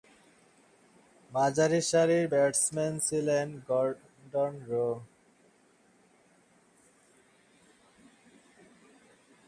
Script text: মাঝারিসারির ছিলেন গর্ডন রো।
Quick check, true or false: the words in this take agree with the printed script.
false